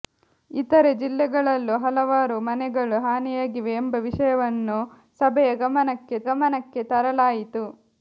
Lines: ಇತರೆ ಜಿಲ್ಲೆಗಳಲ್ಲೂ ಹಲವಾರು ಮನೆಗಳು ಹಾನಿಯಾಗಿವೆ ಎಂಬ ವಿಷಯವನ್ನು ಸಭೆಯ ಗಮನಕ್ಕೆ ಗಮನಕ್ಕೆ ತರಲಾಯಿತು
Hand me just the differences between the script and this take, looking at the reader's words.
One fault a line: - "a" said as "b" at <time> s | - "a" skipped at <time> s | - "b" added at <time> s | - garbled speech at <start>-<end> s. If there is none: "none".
none